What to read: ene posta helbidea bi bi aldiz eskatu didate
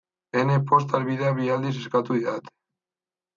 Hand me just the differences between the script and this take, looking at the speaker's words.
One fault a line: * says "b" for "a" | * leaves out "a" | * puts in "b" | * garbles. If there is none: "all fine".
* leaves out "bi"